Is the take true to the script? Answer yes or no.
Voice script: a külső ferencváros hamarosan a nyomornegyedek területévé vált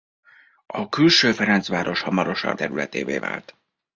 no